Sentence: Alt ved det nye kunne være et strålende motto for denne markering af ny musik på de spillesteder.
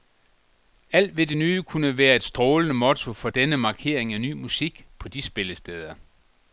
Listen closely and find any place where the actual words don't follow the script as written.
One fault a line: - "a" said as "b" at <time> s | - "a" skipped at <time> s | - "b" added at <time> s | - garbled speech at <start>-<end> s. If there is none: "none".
none